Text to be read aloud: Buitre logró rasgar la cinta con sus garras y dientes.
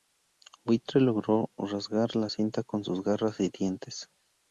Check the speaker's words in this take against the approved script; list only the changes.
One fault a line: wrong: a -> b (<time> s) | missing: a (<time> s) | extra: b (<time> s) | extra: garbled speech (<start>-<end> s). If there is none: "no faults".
no faults